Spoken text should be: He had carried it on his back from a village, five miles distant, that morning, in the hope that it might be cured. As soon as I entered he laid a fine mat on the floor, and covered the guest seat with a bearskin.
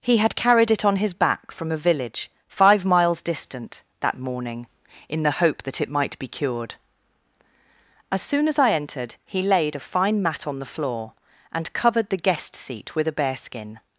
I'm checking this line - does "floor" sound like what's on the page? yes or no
yes